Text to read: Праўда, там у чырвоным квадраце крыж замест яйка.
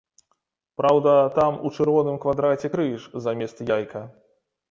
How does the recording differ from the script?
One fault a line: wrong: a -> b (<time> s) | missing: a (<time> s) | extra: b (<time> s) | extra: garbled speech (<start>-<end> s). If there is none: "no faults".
no faults